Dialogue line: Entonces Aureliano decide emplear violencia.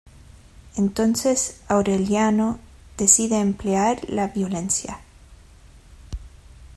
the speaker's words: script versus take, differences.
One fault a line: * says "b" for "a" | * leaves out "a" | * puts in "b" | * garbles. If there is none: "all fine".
* puts in "la"